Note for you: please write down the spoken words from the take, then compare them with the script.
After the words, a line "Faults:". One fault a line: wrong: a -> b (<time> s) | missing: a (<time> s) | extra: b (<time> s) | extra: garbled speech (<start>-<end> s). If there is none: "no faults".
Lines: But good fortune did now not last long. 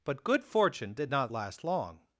But good fortune did not last long.
Faults:
missing: now (1.1 s)